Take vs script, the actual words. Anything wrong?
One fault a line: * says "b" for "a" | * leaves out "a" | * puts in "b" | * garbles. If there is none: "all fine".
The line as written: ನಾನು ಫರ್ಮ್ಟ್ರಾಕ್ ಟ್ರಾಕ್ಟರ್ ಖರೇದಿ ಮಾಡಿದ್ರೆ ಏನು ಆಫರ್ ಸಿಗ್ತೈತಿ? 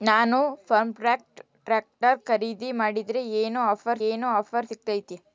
* puts in "ಏನು ಆಫರ್"